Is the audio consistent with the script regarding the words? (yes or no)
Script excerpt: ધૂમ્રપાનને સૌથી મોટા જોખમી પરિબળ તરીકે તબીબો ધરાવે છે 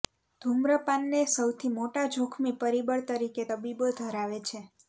yes